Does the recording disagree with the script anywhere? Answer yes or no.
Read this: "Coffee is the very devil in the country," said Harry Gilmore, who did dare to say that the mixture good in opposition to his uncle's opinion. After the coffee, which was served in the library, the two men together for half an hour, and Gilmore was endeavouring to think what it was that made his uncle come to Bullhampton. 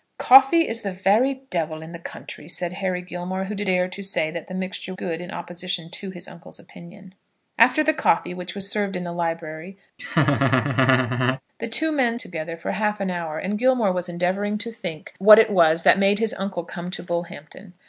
no